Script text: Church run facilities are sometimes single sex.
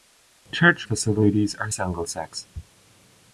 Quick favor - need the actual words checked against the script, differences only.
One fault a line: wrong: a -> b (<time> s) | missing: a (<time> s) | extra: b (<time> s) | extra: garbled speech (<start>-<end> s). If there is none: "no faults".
missing: run (0.9 s)
missing: sometimes (1.7 s)